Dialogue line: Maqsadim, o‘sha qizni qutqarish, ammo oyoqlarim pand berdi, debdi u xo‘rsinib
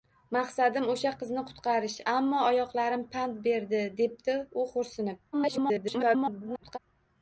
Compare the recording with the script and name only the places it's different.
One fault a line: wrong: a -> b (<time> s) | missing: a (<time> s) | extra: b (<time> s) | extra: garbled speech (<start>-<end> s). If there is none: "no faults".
extra: garbled speech (5.3-6.8 s)